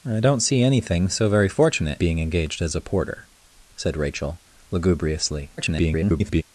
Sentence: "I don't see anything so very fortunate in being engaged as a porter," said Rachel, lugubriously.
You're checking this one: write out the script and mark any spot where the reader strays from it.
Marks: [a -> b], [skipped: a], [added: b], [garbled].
"I don't see anything so very fortunate [skipped: in] being engaged as a porter," said Rachel, lugubriously. [garbled]